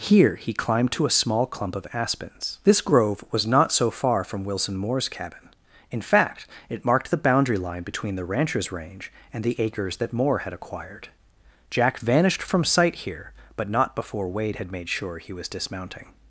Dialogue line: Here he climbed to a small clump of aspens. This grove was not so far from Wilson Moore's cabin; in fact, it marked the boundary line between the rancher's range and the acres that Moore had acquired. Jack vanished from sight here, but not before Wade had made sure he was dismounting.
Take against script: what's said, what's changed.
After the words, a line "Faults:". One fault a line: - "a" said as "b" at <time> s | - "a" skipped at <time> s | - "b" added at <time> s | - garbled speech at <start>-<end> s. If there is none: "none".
Here he climbed to a small clump of aspens. This grove was not so far from Wilson Moore's cabin; in fact, it marked the boundary line between the rancher's range and the acres that Moore had acquired. Jack vanished from sight here, but not before Wade had made sure he was dismounting.
Faults:
none